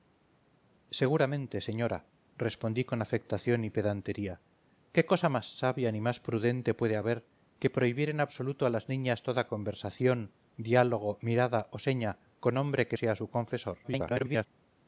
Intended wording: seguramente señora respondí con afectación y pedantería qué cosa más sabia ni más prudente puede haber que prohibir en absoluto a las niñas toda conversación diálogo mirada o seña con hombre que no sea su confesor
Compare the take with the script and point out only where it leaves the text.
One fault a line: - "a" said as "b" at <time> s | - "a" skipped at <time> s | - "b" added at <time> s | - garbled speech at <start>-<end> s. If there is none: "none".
- "no" skipped at 13.0 s
- garbled speech at 13.8-14.5 s